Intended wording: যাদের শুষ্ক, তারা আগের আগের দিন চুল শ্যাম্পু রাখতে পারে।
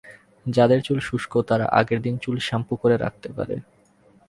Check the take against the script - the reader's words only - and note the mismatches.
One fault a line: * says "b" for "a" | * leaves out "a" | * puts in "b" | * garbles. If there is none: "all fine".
* puts in "চুল"
* leaves out "আগের"
* puts in "করে"